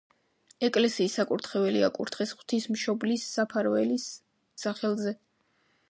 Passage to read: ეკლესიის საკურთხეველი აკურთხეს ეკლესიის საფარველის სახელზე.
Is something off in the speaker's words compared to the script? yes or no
yes